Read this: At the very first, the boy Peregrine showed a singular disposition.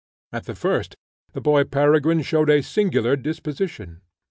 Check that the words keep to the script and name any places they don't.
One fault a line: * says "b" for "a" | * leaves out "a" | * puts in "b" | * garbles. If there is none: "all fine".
* leaves out "very"